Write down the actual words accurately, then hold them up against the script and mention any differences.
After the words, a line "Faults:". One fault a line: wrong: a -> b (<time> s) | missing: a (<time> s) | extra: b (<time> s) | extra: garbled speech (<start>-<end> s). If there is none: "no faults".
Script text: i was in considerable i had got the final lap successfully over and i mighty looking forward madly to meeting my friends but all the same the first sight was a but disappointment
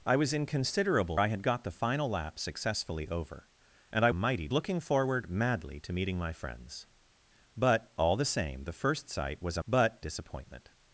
i was in considerable i had got the final lap successfully over and i mighty looking forward madly to meeting my friends but all the same the first sight was a but disappointment
Faults:
no faults